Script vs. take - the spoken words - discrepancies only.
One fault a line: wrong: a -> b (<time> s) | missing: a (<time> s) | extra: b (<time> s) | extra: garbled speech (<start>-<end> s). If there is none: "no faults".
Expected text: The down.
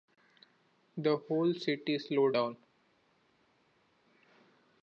extra: whole city slowed (1.1 s)